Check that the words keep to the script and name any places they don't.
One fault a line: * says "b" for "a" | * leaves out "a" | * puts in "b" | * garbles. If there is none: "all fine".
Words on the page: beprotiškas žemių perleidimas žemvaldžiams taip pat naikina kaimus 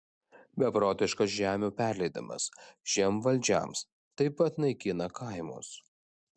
all fine